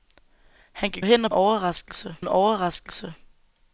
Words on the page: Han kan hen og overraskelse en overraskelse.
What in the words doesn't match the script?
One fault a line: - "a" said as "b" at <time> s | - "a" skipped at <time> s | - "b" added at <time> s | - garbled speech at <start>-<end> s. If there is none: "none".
none